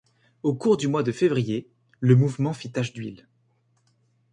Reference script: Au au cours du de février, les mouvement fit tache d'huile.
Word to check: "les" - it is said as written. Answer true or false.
false